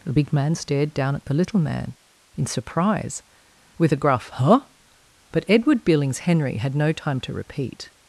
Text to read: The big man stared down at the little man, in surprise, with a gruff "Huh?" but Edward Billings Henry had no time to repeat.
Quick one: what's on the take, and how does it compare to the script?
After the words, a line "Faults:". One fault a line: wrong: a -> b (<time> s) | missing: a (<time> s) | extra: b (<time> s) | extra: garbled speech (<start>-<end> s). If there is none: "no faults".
The big man stared down at the little man, in surprise, with a gruff "Huh?" but Edward Billings Henry had no time to repeat.
Faults:
no faults